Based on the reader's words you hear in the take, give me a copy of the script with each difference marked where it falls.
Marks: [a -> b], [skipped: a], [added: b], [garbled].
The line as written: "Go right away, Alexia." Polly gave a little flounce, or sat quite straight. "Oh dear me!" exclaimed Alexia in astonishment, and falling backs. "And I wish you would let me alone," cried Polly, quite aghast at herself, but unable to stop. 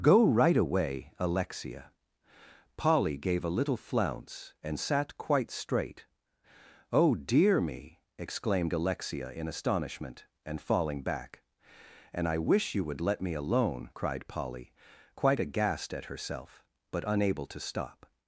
"Go right away, Alexia." Polly gave a little flounce, [or -> and] sat quite straight. "Oh dear me!" exclaimed Alexia in astonishment, and falling [backs. -> back] "And I wish you would let me alone," cried Polly, quite aghast at herself, but unable to stop.